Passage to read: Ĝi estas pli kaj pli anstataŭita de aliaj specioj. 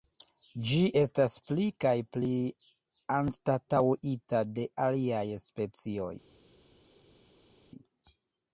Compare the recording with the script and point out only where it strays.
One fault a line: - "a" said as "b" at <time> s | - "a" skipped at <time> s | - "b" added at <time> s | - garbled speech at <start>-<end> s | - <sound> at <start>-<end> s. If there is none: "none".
none